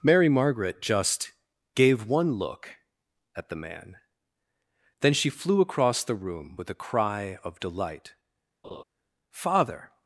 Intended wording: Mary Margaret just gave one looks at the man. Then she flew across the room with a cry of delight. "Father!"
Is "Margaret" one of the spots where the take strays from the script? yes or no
no